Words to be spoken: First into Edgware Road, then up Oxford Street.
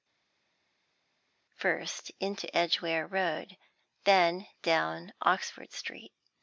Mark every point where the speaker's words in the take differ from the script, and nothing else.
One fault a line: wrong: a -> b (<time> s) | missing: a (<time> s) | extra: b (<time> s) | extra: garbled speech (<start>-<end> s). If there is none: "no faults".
wrong: up -> down (4.6 s)